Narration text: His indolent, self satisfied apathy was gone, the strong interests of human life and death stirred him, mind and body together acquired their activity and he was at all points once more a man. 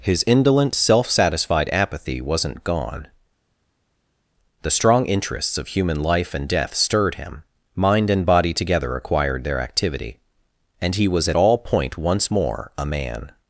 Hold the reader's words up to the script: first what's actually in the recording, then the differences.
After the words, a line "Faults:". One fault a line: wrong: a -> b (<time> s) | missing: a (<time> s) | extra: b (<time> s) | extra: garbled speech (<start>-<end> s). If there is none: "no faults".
His indolent, self satisfied apathy wasn't gone, the strong interests of human life and death stirred him, mind and body together acquired their activity and he was at all point once more a man.
Faults:
wrong: was -> wasn't (2.2 s)
wrong: points -> point (11.6 s)